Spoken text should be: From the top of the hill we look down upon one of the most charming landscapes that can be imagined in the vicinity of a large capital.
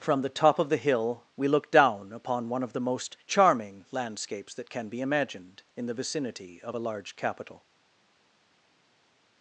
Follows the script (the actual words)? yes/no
yes